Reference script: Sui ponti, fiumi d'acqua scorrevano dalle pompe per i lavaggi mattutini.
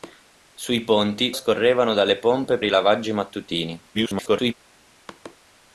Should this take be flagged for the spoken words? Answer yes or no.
yes